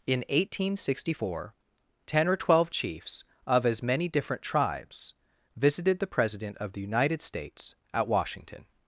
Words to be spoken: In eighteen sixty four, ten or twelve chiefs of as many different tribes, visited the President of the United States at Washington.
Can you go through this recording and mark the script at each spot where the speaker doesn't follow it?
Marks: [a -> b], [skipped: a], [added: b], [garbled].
In eighteen sixty four, ten or twelve chiefs of as many different tribes, visited the President of the United States at Washington.